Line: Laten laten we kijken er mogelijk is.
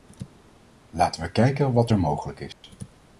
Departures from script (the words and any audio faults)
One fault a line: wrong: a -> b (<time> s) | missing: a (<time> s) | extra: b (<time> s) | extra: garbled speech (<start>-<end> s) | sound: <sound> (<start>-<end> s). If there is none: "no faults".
missing: laten (1.2 s)
extra: wat (1.7 s)
sound: dropout (2.5-2.6 s)